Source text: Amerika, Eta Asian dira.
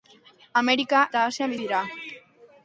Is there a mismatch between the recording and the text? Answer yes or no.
no